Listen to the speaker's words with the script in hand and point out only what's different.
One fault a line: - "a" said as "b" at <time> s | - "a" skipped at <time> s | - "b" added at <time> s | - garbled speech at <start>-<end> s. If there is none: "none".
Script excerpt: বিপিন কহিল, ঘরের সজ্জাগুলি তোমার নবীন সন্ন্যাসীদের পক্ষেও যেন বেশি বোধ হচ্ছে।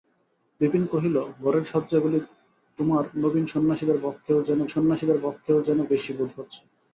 - "সন্ন্যাসীদের পক্ষেও যেন" added at 4.7 s